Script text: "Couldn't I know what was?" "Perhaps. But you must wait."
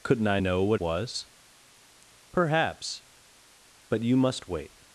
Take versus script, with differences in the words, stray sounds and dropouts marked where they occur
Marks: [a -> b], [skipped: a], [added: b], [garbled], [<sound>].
"Couldn't I know what was?" "Perhaps. But you must wait."